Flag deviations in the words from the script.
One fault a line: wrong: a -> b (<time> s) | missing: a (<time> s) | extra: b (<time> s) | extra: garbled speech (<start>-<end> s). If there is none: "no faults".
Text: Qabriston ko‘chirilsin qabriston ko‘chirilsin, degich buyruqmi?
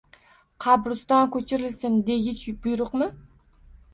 missing: qabriston ko‘chirilsin (2.0 s)